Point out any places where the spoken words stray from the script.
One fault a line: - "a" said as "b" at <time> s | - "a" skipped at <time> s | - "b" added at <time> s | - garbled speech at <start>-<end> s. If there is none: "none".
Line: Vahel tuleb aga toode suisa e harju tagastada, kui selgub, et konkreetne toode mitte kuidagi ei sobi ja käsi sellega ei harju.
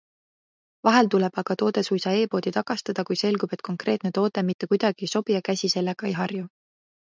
- "harju" said as "poodi" at 2.3 s